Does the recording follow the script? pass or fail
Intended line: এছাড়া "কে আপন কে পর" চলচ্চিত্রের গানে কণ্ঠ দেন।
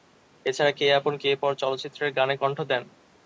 pass